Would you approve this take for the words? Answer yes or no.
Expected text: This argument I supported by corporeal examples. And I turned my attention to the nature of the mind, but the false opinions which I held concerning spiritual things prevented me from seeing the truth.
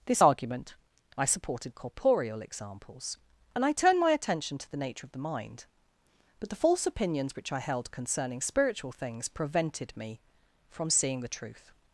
no